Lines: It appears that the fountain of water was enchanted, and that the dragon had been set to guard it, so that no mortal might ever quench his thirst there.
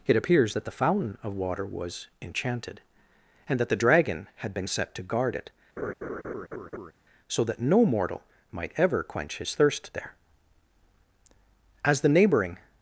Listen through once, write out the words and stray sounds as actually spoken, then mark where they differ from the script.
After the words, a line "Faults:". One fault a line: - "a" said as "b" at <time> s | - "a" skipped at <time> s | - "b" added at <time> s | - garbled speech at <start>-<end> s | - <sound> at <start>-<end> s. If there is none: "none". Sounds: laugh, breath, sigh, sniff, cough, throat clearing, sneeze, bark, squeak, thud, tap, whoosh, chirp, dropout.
It appears that the fountain of water was enchanted, and that the dragon had been set to guard it, so that no mortal might ever quench his thirst there. As the neighboring
Faults:
- laugh at 5.8-6.9 s
- "As the neighboring" added at 11.8 s